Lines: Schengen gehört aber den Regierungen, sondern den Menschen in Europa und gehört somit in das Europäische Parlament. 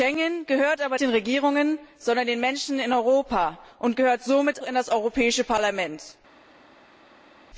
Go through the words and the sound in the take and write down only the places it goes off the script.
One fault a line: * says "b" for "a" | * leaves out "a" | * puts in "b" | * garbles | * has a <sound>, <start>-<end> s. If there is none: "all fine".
all fine